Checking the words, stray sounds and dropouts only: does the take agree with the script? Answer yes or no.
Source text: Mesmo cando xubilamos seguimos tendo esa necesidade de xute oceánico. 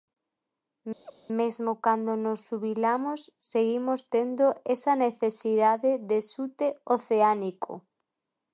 no